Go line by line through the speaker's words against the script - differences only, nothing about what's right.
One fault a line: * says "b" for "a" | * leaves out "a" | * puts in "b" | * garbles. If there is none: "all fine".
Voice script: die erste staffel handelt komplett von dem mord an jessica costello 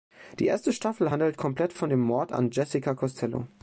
all fine